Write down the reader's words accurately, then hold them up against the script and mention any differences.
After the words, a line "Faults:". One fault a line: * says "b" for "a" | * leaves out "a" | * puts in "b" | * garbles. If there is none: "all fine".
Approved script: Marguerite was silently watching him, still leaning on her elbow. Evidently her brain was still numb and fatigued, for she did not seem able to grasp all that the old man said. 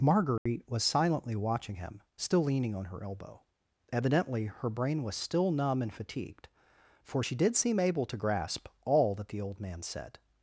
Marguerite was silently watching him, still leaning on her elbow. Evidently her brain was still numb and fatigued, for she did seem able to grasp all that the old man said.
Faults:
* leaves out "not"